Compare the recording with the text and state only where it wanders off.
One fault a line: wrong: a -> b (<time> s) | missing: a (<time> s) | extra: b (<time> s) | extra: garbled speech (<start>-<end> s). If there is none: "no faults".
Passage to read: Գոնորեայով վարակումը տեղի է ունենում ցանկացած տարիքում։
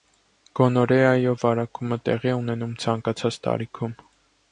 no faults